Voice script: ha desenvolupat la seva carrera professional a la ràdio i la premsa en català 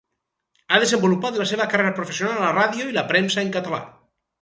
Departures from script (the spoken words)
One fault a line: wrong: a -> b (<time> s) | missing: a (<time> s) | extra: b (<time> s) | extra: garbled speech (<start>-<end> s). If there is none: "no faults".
no faults